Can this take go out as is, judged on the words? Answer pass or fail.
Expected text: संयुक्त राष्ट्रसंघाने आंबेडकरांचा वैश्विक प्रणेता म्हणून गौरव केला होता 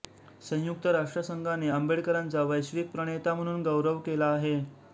fail